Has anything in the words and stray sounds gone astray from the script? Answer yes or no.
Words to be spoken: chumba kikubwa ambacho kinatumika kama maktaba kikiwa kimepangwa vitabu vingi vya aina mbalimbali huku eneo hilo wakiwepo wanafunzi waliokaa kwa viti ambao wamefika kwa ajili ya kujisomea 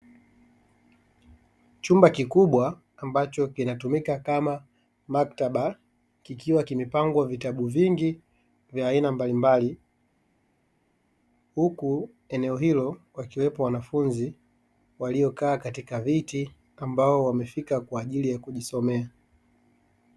yes